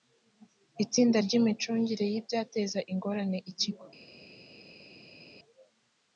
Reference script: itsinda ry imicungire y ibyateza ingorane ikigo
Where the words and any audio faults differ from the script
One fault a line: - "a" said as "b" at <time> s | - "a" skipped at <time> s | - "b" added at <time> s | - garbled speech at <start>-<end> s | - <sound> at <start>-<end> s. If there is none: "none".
none